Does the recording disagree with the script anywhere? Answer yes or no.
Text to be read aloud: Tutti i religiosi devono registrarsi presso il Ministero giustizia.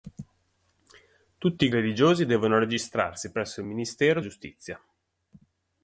no